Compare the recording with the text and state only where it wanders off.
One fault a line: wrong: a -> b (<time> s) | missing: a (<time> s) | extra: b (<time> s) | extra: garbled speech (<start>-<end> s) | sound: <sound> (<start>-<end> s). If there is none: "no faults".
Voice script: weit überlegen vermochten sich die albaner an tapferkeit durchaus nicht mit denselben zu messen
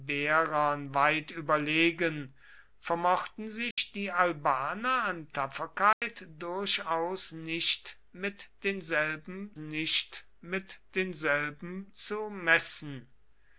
sound: dropout (3.7-3.8 s)
sound: dropout (5.9-6.0 s)
extra: nicht mit denselben (9.6 s)